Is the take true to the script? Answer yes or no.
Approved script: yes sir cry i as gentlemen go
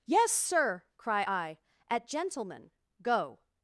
no